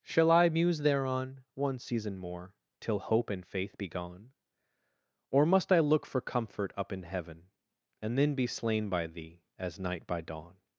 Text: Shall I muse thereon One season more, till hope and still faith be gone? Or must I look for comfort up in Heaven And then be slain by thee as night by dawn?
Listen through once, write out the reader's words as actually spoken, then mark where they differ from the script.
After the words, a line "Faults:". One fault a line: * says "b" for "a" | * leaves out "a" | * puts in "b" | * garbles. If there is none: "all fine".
Shall I muse thereon One season more, till hope and faith be gone? Or must I look for comfort up in Heaven And then be slain by thee as night by dawn?
Faults:
* leaves out "still"